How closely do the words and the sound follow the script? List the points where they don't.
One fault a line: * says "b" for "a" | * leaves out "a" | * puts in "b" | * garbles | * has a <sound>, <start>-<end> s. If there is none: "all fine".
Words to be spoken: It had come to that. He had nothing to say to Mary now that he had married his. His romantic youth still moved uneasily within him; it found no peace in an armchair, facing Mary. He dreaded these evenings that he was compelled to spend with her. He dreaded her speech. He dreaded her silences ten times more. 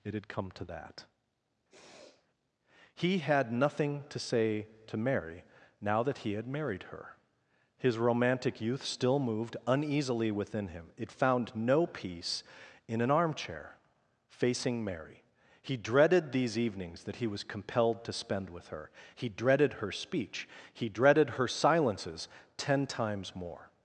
* has a sniff, 1.7-2.3 s
* says "her" for "his"